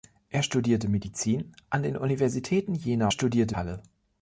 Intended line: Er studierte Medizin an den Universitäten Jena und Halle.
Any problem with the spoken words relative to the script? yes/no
yes